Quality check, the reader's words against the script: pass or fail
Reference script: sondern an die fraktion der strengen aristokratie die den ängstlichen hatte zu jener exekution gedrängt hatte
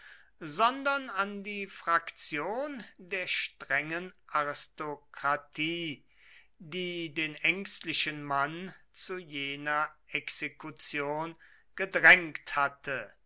fail